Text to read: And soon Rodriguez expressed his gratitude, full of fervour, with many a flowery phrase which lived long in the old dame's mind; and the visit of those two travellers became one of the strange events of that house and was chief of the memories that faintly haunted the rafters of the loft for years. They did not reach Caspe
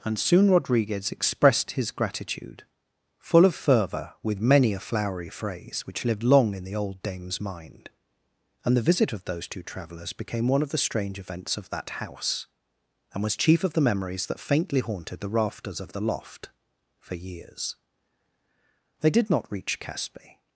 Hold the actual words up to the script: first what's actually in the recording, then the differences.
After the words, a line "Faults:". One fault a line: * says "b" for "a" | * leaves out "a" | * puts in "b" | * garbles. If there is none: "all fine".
And soon Rodriguez expressed his gratitude, full of fervour, with many a flowery phrase which lived long in the old dame's mind; and the visit of those two travellers became one of the strange events of that house and was chief of the memories that faintly haunted the rafters of the loft for years. They did not reach Caspe
Faults:
all fine